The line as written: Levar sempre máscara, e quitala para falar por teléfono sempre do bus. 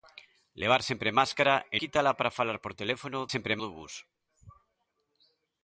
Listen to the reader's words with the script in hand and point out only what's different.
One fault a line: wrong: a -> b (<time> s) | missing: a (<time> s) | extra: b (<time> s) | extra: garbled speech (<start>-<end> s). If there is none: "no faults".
no faults